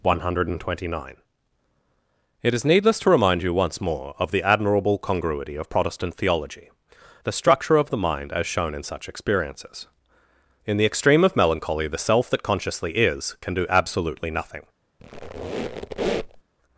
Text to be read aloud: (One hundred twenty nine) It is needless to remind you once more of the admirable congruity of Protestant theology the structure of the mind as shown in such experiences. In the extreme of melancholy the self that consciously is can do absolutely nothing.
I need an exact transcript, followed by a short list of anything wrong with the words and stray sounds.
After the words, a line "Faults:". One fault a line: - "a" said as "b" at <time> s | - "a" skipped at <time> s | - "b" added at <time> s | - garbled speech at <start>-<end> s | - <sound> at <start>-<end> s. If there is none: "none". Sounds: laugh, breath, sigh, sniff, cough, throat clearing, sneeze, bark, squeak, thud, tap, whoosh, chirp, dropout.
(One hundred twenty nine) It is needless to remind you once more of the admirable congruity of Protestant theology the structure of the mind as shown in such experiences. In the extreme of melancholy the self that consciously is can do absolutely nothing.
Faults:
- squeak at 15.0-16.4 s